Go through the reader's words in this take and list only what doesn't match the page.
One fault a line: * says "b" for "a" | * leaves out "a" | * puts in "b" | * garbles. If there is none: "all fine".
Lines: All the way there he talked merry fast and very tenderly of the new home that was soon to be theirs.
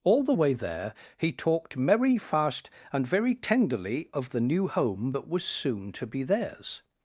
all fine